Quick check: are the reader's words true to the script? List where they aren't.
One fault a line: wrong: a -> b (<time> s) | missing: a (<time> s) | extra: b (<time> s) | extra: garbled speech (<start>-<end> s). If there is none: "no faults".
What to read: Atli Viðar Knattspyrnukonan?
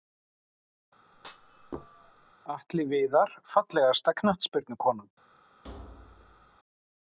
extra: Fallegasta (3.5 s)